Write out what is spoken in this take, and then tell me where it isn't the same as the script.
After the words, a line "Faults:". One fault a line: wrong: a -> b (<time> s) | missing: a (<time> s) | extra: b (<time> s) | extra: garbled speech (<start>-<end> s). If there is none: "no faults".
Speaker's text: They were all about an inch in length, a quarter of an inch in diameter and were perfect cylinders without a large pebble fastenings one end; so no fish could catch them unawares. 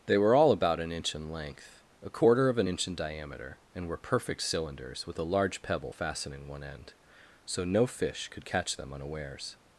They were all about an inch in length, a quarter of an inch in diameter and were perfect cylinders with a large pebble fastening one end; so no fish could catch them unawares.
Faults:
wrong: without -> with (5.0 s)
wrong: fastenings -> fastening (5.9 s)